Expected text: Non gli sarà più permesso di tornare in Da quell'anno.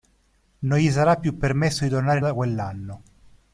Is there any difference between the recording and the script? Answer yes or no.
no